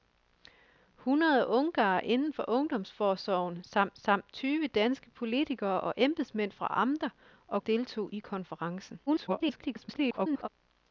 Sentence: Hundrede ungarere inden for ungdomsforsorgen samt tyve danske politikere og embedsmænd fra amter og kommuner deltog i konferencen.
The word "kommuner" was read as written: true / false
false